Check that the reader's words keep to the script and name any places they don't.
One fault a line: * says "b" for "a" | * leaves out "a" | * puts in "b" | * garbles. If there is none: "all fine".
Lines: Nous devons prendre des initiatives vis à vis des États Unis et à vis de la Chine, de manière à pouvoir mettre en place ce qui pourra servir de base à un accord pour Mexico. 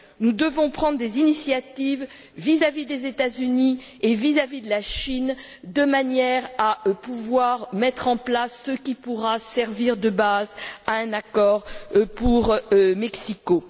* puts in "vis"